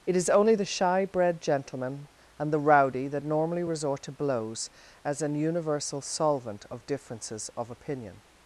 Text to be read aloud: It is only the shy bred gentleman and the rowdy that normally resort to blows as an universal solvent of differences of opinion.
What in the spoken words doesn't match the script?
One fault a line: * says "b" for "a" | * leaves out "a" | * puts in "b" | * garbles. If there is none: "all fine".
all fine